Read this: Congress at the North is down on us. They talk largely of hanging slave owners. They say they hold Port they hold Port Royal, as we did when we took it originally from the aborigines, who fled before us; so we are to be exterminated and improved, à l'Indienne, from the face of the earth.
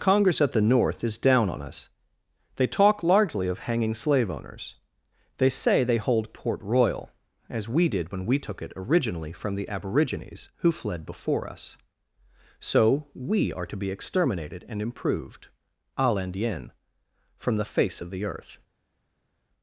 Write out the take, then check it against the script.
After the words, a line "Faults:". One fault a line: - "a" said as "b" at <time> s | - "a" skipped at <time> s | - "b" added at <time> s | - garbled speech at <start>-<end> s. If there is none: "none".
Congress at the North is down on us. They talk largely of hanging slave owners. They say they hold Port Royal, as we did when we took it originally from the aborigines, who fled before us; so we are to be exterminated and improved, à l'Indienne, from the face of the earth.
Faults:
- "they hold Port" skipped at 6.6 s